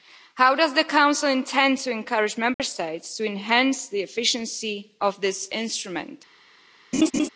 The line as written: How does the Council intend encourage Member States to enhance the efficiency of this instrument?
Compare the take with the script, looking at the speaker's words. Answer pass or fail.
fail